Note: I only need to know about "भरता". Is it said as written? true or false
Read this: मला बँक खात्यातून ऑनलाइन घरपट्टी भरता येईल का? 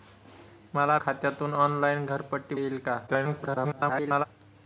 false